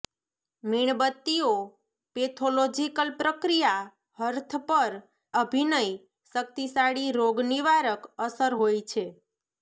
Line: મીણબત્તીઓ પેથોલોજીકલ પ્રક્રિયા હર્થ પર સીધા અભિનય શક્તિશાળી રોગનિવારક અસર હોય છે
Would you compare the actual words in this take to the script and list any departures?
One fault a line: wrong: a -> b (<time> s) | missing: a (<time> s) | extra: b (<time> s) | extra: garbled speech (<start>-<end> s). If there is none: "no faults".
missing: સીધા (5.0 s)